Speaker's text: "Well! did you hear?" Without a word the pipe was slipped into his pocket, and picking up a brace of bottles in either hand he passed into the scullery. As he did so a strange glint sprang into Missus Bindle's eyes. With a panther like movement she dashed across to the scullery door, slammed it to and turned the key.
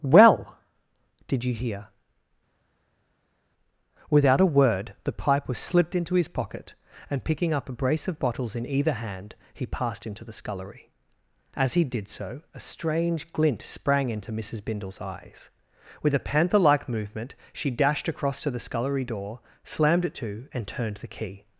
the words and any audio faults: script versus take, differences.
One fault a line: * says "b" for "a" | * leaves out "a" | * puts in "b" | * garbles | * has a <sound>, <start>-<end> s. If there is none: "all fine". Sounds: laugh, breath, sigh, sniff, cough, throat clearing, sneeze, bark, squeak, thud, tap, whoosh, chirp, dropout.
all fine